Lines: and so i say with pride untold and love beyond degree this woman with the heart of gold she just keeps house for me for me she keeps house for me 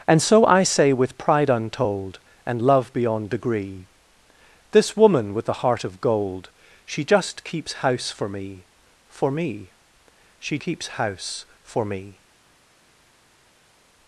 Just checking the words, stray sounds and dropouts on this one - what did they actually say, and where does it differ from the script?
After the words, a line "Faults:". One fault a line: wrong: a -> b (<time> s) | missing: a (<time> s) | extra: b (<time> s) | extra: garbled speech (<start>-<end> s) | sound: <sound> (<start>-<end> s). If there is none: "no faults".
and so i say with pride untold and love beyond degree this woman with the heart of gold she just keeps house for me for me she keeps house for me
Faults:
no faults